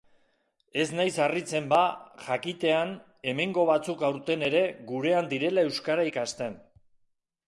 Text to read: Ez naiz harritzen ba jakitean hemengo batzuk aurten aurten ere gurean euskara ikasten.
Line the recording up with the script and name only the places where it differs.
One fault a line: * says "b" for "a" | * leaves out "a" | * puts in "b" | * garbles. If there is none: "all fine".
* leaves out "aurten"
* puts in "direla"